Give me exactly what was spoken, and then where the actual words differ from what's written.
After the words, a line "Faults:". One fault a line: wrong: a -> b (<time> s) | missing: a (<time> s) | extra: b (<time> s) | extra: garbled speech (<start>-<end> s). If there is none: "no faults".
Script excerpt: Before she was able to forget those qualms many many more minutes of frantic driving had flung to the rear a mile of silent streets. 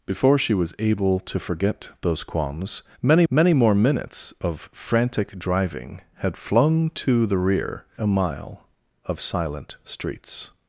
Before she was able to forget those qualms many many more minutes of frantic driving had flung to the rear a mile of silent streets.
Faults:
no faults